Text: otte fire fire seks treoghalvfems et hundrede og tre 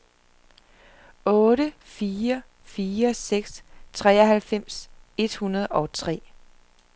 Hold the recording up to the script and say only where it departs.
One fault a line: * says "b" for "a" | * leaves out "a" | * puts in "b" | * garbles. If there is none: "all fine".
all fine